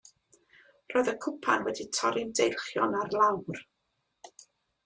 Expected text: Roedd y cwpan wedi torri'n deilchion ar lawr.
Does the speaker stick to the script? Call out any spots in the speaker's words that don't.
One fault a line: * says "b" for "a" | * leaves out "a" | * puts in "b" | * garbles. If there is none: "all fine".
all fine